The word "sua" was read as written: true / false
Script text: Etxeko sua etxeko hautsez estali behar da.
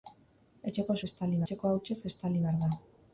false